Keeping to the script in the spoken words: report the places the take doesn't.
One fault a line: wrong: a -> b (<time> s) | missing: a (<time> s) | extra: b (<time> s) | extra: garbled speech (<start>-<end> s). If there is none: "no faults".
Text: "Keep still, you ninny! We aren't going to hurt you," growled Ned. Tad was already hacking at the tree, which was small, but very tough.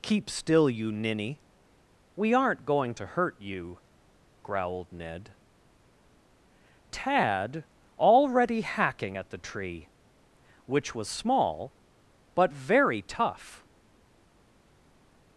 missing: was (7.7 s)